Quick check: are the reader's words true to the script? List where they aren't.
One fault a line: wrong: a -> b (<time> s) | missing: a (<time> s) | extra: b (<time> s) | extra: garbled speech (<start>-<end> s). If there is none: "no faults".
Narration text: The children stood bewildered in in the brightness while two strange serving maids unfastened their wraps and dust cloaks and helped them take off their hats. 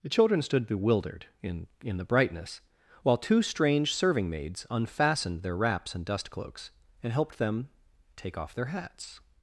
no faults